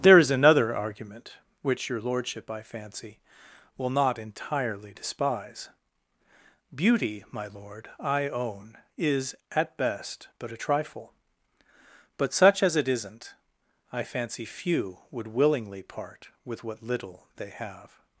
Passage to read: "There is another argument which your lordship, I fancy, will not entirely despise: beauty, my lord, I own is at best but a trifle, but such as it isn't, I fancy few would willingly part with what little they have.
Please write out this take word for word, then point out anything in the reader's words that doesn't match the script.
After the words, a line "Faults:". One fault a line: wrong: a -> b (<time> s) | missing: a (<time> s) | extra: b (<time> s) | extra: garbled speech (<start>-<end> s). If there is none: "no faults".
"There is another argument which your lordship, I fancy, will not entirely despise: beauty, my lord, I own is at best but a trifle, but such as it isn't, I fancy few would willingly part with what little they have.
Faults:
no faults